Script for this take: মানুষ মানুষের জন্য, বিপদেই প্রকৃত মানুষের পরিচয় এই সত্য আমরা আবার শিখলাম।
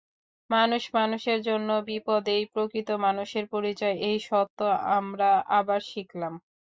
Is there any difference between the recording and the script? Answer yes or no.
no